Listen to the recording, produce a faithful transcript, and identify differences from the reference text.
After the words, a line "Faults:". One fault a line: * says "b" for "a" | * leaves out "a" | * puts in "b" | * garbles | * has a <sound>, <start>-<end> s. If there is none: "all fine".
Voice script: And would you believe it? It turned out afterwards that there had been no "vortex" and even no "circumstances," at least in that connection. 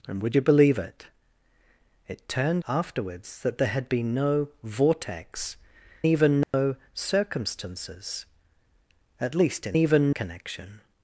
And would you believe it? It turned afterwards that there had been no "vortex" even no "circumstances," at least in even connection.
Faults:
* leaves out "out"
* leaves out "and"
* has a dropout, 6.4-6.5 s
* says "even" for "that"